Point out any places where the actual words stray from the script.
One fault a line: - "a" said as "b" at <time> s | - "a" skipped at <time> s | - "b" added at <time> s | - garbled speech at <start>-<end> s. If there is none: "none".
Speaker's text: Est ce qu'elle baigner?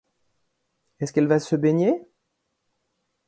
- "va se" added at 1.3 s